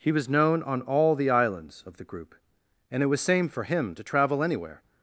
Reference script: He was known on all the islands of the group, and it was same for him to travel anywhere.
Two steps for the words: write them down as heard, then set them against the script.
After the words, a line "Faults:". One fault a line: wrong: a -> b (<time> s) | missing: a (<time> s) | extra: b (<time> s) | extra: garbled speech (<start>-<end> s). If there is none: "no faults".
He was known on all the islands of the group, and it was same for him to travel anywhere.
Faults:
no faults